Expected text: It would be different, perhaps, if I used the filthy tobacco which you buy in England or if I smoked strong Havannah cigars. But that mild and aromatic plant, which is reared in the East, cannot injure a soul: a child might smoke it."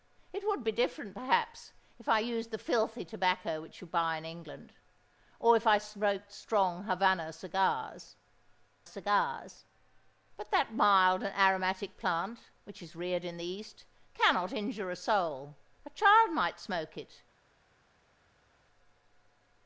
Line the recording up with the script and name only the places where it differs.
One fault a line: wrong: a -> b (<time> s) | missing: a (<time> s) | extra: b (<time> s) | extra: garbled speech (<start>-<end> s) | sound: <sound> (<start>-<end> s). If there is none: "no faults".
extra: cigars (8.9 s)